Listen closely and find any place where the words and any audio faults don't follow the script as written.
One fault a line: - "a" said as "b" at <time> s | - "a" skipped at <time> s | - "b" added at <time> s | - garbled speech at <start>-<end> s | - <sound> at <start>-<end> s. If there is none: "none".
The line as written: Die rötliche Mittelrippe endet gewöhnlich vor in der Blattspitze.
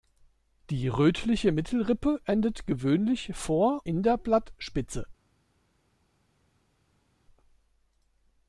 none